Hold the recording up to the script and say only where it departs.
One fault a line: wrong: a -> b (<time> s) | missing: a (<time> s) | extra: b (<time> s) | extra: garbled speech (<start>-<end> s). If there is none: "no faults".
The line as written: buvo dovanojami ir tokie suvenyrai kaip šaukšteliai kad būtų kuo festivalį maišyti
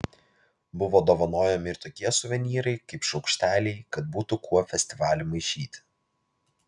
no faults